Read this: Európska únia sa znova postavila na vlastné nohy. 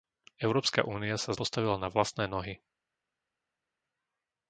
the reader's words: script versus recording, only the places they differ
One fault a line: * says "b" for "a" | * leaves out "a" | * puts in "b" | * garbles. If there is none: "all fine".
* leaves out "znova"